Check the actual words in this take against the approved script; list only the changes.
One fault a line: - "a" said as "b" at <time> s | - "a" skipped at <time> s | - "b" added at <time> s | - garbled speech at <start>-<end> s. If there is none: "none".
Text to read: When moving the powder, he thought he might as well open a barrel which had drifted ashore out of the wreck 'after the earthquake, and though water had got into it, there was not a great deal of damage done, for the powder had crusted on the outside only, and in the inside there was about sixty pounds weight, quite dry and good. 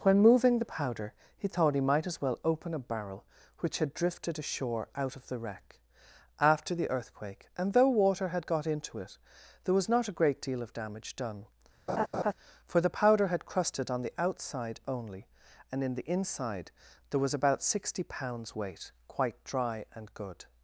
none